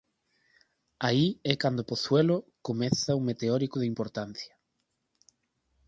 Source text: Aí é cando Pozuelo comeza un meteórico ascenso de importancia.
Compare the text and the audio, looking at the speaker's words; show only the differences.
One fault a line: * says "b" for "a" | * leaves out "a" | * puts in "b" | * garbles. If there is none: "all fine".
* leaves out "ascenso"